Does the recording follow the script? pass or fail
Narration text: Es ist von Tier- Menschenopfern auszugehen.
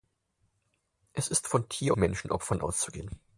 pass